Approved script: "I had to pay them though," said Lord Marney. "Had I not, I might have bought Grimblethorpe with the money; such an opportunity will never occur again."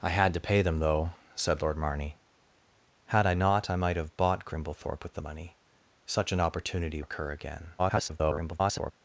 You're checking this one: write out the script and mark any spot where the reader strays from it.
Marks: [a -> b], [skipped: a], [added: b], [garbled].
"I had to pay them though," said Lord Marney. "Had I not, I might have bought Grimblethorpe with the money; such an opportunity [skipped: will never] occur again." [garbled]